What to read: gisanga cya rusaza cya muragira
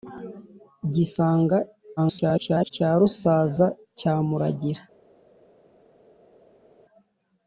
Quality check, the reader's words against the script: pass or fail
fail